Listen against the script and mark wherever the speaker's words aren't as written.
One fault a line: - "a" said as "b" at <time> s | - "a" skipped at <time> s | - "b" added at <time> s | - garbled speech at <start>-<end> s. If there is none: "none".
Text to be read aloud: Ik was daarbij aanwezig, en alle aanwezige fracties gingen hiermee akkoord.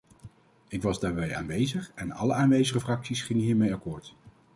none